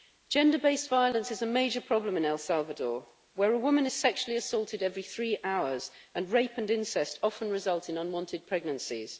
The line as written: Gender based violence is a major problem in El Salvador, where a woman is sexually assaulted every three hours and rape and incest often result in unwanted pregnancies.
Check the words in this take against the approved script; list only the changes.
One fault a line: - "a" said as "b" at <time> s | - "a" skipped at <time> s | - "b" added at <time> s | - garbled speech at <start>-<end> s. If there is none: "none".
none